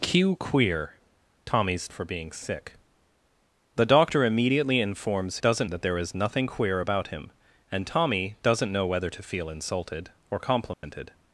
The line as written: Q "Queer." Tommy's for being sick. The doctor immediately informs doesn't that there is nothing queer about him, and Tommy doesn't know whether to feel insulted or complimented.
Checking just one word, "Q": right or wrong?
right